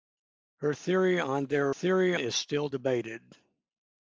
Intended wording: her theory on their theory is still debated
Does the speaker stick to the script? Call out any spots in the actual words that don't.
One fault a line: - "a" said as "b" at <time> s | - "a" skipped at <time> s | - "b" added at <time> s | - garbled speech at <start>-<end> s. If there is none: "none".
none